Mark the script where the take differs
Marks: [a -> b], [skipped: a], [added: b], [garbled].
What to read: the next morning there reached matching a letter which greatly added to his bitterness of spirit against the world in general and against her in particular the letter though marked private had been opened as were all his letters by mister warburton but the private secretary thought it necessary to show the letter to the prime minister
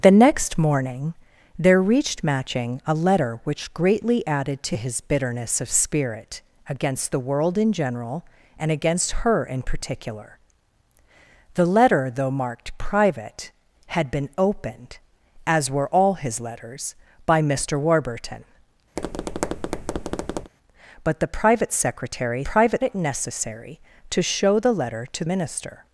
the next morning there reached matching a letter which greatly added to his bitterness of spirit against the world in general and against her in particular the letter though marked private had been opened as were all his letters by mister warburton but the private secretary [thought -> private] it necessary to show the letter to [skipped: the prime] minister